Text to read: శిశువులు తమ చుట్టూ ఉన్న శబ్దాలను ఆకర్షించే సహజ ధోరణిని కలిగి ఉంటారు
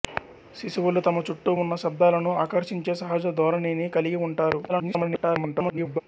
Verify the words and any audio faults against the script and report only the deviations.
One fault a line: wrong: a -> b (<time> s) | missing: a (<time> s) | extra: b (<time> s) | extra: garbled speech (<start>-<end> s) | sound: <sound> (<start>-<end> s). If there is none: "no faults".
extra: garbled speech (4.7-6.0 s)